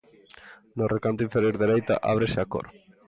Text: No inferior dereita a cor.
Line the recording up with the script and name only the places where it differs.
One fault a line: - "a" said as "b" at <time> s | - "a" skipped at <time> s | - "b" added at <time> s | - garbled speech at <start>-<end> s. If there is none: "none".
- "recanto" added at 0.9 s
- "ábrese" added at 2.1 s